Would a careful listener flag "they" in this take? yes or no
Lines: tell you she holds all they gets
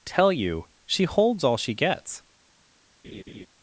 yes